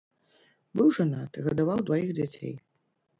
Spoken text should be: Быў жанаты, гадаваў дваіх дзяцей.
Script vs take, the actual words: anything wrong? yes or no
no